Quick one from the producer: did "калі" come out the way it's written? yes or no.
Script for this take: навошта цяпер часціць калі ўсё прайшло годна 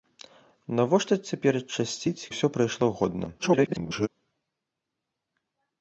no